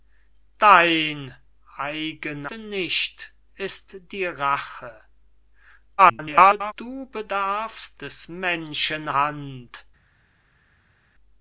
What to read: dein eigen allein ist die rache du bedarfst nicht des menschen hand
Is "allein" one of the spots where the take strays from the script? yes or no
yes